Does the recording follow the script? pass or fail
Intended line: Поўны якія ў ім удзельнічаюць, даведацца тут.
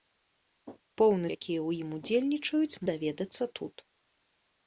pass